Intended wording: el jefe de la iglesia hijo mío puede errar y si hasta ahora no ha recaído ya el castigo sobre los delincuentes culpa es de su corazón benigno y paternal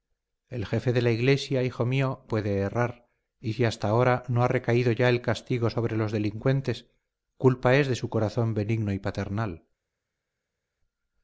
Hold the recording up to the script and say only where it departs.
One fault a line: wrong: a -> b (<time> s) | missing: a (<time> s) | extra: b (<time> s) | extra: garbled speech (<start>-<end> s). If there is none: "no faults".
no faults